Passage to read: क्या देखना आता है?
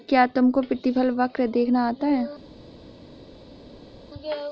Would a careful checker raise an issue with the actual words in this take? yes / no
yes